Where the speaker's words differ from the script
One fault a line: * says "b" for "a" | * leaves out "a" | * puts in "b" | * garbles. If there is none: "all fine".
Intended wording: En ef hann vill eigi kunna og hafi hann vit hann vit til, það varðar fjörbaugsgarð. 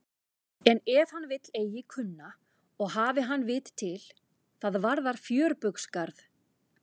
* leaves out "hann vit"